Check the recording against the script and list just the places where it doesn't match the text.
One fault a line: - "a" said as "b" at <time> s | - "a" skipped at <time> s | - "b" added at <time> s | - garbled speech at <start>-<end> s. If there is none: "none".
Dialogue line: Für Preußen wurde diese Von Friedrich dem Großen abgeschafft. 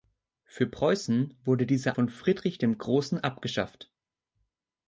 none